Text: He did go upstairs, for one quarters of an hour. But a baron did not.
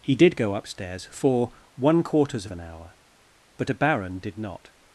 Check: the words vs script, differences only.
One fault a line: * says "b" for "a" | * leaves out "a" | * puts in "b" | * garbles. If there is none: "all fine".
all fine